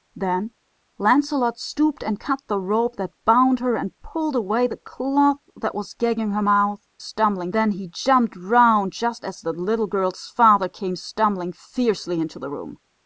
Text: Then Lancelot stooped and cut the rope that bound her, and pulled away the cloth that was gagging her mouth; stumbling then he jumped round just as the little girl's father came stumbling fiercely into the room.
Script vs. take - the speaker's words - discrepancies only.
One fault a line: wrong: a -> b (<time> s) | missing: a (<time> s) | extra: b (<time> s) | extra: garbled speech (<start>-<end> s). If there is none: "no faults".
no faults